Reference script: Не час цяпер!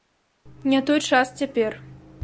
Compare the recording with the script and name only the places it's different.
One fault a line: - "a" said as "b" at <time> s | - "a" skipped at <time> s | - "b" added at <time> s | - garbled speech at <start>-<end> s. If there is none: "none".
- "той" added at 0.8 s